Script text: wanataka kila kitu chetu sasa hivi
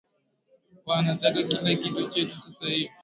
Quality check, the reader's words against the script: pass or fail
pass